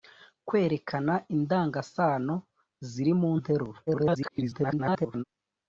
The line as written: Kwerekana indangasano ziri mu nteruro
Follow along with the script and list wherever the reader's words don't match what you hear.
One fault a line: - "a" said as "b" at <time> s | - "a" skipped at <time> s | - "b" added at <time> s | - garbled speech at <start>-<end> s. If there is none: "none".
- garbled speech at 3.9-5.2 s